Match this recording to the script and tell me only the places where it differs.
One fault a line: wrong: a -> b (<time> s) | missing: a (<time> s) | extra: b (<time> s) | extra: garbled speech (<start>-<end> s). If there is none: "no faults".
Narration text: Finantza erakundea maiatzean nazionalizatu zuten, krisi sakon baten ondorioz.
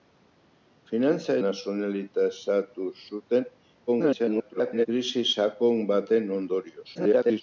missing: erakundea maiatzean (1.4 s)
extra: garbled speech (3.9-4.9 s)
extra: garbled speech (6.9-7.4 s)